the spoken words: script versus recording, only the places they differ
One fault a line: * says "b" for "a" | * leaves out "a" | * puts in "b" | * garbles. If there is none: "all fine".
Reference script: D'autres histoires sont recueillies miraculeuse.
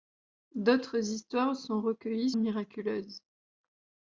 all fine